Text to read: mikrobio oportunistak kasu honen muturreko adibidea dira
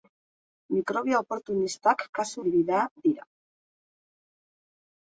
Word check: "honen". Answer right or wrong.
wrong